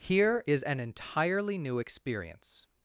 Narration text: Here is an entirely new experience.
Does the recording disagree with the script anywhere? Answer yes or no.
no